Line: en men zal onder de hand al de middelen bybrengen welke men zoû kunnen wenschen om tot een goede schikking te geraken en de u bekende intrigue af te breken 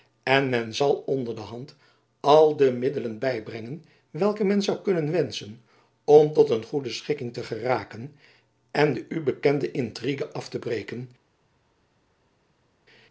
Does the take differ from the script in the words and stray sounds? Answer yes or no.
no